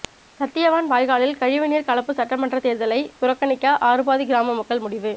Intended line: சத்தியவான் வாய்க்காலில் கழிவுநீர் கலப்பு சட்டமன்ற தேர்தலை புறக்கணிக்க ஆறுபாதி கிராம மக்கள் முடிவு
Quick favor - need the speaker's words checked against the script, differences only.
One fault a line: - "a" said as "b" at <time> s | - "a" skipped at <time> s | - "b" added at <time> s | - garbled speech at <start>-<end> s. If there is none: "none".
none